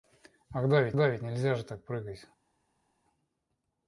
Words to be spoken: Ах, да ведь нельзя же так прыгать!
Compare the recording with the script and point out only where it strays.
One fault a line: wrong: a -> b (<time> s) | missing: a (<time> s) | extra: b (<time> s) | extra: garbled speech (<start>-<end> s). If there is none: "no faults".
extra: да ведь (0.9 s)